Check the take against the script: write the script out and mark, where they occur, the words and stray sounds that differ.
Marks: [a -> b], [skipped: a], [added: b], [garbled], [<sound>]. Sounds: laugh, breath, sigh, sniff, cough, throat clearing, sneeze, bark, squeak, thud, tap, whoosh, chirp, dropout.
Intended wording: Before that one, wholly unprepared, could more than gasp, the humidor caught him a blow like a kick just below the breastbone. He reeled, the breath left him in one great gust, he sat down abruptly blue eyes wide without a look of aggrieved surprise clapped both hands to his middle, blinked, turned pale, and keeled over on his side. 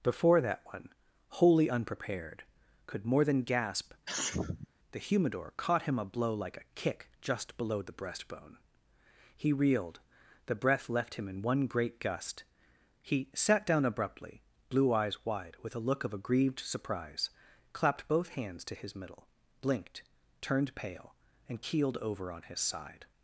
Before that one, wholly unprepared, could more than gasp, [sneeze] the humidor caught him a blow like a kick just below the breastbone. He reeled, the breath left him in one great gust, he sat down abruptly blue eyes wide [without -> with] a look of aggrieved surprise clapped both hands to his middle, blinked, turned pale, and keeled over on his side.